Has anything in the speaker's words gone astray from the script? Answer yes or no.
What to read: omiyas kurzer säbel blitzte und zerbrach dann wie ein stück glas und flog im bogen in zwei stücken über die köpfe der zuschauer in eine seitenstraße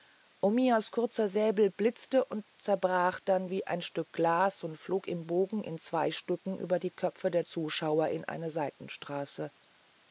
no